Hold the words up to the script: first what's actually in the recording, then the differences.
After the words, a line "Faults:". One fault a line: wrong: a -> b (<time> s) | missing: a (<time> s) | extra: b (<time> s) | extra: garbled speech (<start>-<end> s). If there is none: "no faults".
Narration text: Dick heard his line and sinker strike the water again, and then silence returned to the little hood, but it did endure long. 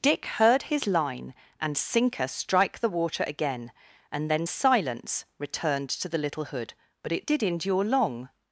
Dick heard his line and sinker strike the water again, and then silence returned to the little hood, but it did endure long.
Faults:
no faults